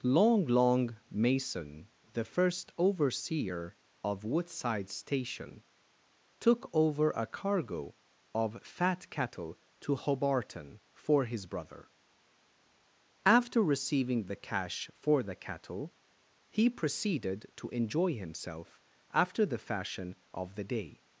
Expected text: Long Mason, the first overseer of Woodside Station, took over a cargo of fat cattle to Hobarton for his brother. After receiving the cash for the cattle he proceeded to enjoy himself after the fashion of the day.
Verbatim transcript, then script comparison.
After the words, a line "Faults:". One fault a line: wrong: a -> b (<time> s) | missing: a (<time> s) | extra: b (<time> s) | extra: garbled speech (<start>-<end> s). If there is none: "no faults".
Long long Mason, the first overseer of Woodside Station, took over a cargo of fat cattle to Hobarton for his brother. After receiving the cash for the cattle he proceeded to enjoy himself after the fashion of the day.
Faults:
extra: long (0.5 s)